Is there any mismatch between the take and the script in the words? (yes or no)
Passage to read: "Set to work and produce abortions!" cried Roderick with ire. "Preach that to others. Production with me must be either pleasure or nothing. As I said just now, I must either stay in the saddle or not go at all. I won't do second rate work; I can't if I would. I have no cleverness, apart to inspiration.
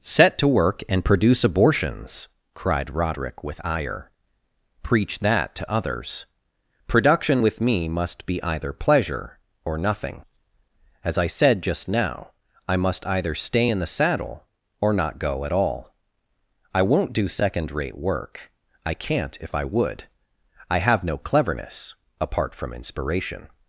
yes